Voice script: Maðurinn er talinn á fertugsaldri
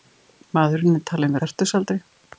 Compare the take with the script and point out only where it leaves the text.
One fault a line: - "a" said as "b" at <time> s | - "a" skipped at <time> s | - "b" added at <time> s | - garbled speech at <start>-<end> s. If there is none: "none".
none